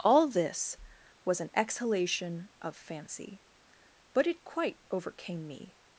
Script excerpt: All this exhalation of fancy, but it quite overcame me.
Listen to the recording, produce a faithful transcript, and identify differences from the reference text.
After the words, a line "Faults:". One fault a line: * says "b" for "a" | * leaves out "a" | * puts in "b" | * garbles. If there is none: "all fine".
All this was an exhalation of fancy, but it quite overcame me.
Faults:
* puts in "was an"